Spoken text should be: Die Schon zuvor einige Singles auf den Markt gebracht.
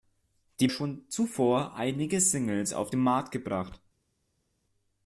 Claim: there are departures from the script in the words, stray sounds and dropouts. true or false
false